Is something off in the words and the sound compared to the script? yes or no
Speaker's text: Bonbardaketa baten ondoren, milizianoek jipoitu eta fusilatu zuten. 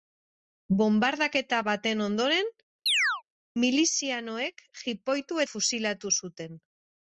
yes